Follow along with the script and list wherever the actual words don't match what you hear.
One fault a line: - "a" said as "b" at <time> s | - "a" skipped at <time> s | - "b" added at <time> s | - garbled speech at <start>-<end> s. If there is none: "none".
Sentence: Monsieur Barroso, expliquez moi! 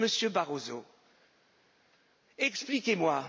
none